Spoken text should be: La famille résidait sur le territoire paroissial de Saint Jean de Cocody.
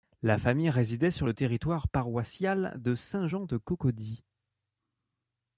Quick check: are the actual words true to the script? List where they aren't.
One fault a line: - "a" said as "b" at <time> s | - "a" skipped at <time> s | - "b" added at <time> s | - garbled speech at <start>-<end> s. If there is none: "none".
none